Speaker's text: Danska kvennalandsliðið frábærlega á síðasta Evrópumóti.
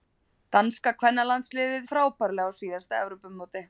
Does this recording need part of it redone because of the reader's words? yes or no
no